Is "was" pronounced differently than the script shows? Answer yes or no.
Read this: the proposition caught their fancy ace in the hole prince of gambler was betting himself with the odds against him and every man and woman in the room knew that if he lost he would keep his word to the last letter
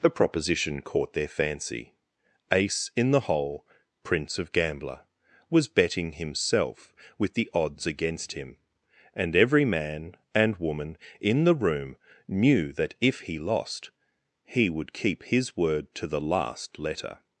no